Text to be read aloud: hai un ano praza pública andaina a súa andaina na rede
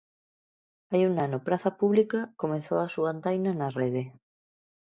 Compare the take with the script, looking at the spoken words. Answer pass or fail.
fail